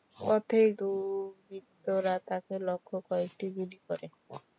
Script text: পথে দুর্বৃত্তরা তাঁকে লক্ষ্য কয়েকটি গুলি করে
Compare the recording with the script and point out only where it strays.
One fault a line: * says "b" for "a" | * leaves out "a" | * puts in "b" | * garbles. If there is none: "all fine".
all fine